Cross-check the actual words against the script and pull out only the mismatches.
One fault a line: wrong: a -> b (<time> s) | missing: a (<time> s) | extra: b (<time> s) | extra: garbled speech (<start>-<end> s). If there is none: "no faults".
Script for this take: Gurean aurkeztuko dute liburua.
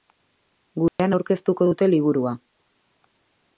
no faults